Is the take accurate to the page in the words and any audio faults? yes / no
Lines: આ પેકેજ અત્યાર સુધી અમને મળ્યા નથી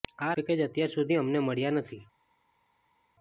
yes